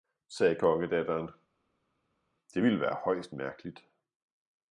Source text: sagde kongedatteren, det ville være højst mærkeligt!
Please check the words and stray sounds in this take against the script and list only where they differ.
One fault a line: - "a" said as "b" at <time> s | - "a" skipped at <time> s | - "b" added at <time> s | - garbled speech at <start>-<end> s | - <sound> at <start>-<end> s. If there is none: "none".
none